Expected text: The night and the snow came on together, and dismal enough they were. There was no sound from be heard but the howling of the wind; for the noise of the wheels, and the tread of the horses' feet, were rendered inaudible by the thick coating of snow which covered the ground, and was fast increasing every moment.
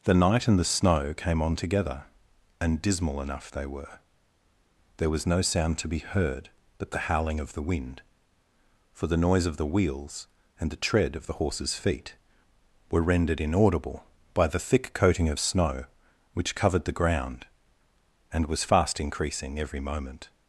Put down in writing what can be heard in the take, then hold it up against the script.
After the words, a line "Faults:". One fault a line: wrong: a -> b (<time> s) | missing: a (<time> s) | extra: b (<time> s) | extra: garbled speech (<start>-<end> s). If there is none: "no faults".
The night and the snow came on together, and dismal enough they were. There was no sound to be heard but the howling of the wind; for the noise of the wheels, and the tread of the horses' feet, were rendered inaudible by the thick coating of snow which covered the ground, and was fast increasing every moment.
Faults:
wrong: from -> to (5.8 s)